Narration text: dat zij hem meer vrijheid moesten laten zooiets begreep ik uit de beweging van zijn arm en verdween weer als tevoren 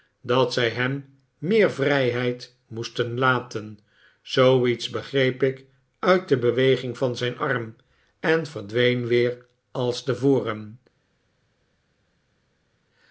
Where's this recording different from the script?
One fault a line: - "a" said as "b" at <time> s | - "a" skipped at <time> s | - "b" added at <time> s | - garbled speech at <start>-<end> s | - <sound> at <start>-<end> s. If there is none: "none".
none